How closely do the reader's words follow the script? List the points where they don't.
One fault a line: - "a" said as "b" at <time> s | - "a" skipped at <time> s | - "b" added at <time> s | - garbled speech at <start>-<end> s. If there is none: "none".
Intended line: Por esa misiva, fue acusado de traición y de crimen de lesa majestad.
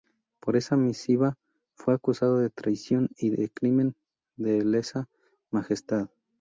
none